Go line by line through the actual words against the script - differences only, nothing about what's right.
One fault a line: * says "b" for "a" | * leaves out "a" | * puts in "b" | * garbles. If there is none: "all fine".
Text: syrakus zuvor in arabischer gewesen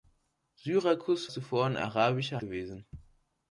all fine